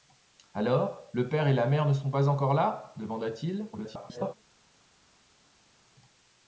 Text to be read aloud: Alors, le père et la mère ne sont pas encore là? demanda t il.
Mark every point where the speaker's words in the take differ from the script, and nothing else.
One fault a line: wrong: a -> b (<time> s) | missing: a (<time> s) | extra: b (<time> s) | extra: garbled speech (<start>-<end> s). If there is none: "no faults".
extra: garbled speech (3.7-4.3 s)